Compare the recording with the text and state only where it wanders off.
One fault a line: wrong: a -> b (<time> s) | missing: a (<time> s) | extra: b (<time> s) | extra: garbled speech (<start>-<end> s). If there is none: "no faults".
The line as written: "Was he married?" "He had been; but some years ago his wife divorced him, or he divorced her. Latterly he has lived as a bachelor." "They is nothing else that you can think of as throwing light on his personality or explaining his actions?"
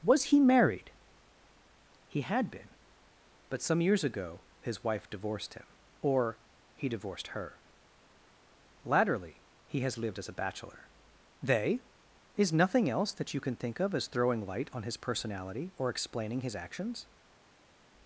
no faults